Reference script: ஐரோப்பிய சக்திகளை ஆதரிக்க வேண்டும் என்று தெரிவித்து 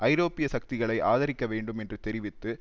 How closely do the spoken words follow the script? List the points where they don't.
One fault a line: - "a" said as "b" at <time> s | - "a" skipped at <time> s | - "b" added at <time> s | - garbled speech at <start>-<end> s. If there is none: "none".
none